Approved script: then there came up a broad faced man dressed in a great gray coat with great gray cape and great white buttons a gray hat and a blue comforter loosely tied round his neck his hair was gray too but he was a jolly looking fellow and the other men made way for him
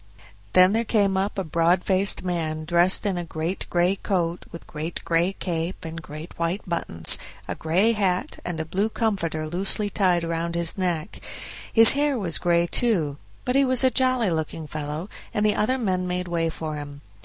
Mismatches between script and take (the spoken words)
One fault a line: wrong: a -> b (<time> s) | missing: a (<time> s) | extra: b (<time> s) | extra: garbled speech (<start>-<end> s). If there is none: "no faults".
no faults